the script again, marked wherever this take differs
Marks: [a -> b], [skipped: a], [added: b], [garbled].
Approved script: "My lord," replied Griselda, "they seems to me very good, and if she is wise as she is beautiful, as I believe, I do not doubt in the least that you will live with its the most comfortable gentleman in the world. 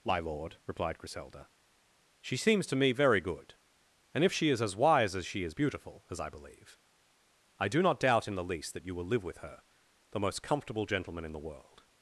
"My lord," replied Griselda, ["they -> she] seems to me very good, and if she is [added: as] wise as she is beautiful, as I believe, I do not doubt in the least that you will live with [its -> her] the most comfortable gentleman in the world.